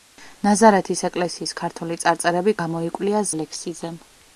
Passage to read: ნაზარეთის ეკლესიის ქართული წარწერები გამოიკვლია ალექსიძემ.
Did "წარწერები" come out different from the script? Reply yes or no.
no